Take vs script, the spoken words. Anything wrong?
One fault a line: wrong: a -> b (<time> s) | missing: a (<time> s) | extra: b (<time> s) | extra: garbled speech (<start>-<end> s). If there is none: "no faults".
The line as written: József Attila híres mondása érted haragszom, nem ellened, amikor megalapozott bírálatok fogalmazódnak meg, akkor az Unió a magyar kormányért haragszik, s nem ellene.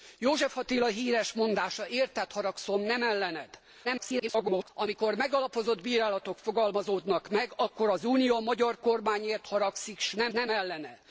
extra: garbled speech (3.8-4.7 s)
extra: nem (10.3 s)